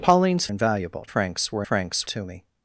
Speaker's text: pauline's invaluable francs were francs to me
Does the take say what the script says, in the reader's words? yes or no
yes